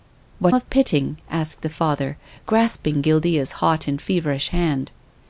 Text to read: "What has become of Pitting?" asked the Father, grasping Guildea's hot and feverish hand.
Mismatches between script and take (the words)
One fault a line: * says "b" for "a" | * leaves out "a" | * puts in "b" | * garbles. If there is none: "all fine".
* leaves out "has become"